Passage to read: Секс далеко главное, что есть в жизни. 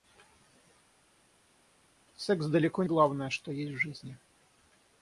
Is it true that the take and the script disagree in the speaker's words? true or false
false